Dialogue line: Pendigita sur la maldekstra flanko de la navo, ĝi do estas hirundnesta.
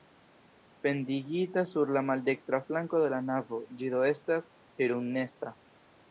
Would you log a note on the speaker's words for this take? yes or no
no